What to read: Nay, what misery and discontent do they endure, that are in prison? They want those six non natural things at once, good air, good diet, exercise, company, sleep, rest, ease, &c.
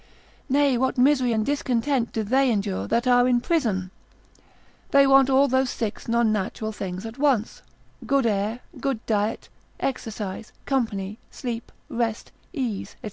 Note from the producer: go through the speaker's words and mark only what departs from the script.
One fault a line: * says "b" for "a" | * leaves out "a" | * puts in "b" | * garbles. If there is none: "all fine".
* puts in "all"